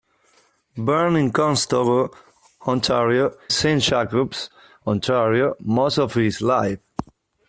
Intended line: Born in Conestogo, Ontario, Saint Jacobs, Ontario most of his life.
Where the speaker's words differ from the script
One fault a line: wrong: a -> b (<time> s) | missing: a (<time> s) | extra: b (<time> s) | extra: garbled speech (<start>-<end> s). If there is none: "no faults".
no faults